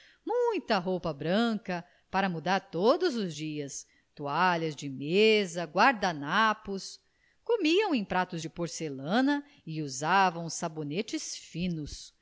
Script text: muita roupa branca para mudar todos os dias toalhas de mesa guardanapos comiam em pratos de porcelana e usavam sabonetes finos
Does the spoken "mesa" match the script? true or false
true